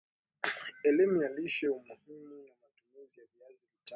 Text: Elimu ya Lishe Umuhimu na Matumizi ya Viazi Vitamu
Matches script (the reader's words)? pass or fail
pass